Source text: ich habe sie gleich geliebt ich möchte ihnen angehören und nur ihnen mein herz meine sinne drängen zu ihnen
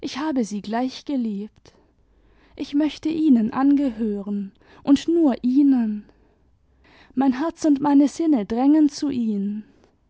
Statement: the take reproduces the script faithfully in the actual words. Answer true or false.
false